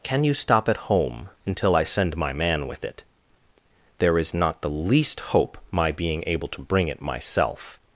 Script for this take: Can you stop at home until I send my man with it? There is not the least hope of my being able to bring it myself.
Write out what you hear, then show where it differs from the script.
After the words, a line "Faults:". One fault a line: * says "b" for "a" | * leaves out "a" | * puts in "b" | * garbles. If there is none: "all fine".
Can you stop at home until I send my man with it? There is not the least hope my being able to bring it myself.
Faults:
* leaves out "of"